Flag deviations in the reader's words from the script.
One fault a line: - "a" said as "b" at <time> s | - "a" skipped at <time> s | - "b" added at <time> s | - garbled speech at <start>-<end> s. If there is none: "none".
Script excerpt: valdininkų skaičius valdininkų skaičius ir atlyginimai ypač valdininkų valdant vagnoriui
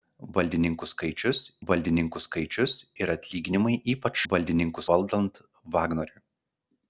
none